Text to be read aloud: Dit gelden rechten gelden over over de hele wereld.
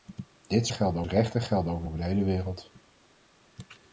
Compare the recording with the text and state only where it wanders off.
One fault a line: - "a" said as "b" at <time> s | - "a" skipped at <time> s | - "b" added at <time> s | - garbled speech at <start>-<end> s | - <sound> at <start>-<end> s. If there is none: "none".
none